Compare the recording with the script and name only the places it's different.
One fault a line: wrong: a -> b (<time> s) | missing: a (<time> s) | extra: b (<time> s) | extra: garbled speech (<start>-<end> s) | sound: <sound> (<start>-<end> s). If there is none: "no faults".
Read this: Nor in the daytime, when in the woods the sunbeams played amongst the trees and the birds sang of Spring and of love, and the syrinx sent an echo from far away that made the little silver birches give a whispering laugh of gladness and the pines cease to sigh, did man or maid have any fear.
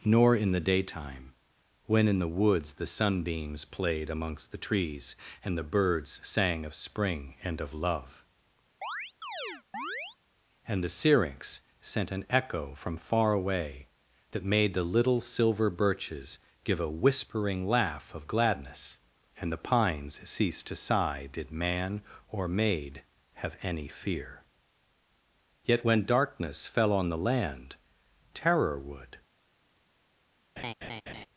sound: chirp (8.8-10.2 s)
extra: Yet when darkness fell on the land terror would (25.6 s)
sound: laugh (30.6-31.3 s)